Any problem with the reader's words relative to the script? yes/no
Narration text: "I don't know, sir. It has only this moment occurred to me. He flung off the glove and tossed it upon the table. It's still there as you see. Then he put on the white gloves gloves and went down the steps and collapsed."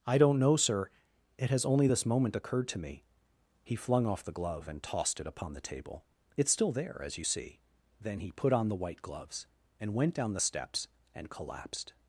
yes